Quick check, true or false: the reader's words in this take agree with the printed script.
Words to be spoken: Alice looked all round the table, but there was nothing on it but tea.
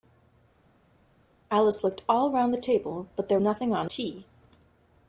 false